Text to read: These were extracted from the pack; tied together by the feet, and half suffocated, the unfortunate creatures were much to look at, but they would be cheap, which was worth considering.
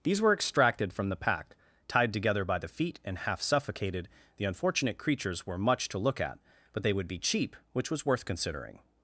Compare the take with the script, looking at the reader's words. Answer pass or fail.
pass